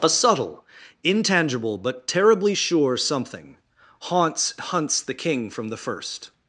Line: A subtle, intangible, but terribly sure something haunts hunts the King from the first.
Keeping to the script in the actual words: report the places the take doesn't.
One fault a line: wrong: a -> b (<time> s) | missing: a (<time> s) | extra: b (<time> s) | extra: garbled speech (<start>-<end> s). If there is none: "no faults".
no faults